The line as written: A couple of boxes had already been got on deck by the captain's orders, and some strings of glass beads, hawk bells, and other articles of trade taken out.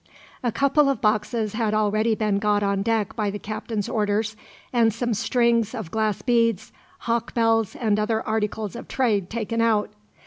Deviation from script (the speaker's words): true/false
false